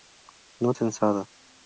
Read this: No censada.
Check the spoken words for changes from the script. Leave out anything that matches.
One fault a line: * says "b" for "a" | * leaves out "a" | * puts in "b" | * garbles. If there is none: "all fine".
all fine